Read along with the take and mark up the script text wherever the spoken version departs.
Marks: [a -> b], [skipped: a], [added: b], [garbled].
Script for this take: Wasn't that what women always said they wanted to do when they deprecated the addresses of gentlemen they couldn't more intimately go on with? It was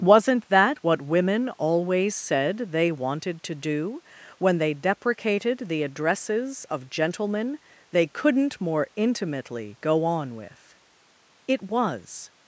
Wasn't that what women always said they wanted to do when they deprecated the addresses of gentlemen they couldn't more intimately go on with? It was